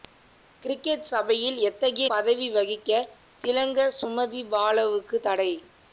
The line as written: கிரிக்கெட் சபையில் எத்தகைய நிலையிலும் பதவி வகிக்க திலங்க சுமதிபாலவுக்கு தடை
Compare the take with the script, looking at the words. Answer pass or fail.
fail